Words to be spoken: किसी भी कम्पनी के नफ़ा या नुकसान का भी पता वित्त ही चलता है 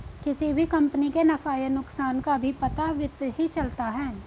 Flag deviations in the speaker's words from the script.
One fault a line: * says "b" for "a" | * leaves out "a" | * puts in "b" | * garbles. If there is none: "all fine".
all fine